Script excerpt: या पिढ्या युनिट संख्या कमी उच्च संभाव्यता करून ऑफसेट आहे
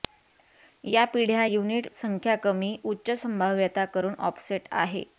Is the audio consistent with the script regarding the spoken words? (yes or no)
yes